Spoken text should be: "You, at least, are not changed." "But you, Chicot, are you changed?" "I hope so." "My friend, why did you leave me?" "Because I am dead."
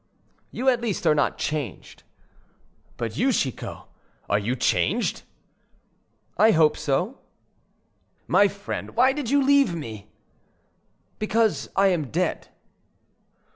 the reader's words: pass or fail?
pass